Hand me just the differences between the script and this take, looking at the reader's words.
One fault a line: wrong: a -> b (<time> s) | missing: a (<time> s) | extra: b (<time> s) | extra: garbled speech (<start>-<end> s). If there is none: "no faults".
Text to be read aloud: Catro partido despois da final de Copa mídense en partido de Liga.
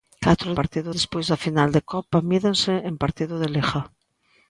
no faults